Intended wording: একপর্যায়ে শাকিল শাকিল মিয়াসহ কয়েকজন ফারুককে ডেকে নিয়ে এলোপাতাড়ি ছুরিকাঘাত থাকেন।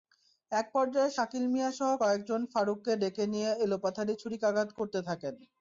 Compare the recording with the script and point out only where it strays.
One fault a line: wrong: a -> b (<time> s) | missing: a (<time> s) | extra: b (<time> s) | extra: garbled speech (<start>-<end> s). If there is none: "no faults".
missing: শাকিল (1.4 s)
extra: করতে (4.8 s)